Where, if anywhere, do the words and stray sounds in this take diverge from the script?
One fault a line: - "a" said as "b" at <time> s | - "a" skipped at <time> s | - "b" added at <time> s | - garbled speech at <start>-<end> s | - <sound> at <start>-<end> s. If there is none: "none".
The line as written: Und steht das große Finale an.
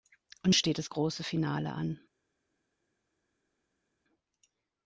none